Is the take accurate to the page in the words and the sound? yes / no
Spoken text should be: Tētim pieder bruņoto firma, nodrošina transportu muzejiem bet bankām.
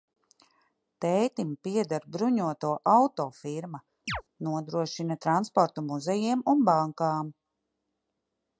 no